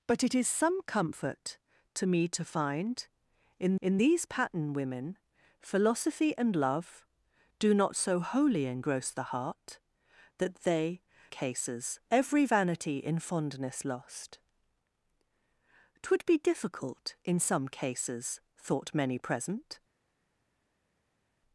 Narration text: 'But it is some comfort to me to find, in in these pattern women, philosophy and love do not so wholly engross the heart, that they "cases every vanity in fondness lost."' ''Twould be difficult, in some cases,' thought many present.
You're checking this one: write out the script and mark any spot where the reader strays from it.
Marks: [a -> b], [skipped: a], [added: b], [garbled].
'But it is some comfort to me to find, in in these pattern women, philosophy and love do not so wholly engross the heart, that they "cases every vanity in fondness lost."' ''Twould be difficult, in some cases,' thought many present.